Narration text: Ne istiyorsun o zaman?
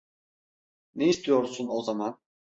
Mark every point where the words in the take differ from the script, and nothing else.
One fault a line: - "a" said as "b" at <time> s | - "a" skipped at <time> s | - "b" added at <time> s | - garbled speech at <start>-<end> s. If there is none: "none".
none